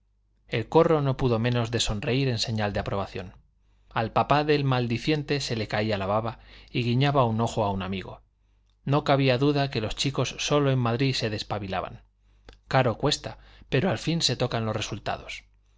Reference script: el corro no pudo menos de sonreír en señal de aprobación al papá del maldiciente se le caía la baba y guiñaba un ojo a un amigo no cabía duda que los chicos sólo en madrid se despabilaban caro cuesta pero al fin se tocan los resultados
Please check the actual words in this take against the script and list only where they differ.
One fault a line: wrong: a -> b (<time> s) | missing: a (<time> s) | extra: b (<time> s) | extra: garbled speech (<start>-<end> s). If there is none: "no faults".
no faults